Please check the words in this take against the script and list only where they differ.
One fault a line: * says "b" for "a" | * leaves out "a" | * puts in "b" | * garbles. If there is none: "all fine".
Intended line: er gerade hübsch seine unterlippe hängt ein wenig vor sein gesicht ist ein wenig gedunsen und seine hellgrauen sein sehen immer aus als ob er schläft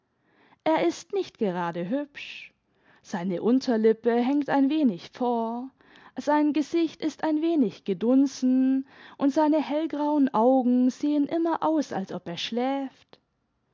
* puts in "ist nicht"
* says "augen" for "sein"